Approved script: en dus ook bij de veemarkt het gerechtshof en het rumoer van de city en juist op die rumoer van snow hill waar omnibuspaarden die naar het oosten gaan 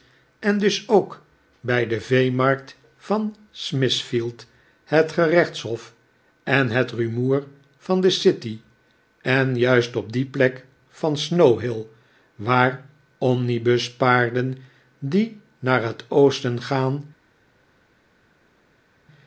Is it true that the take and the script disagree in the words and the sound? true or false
true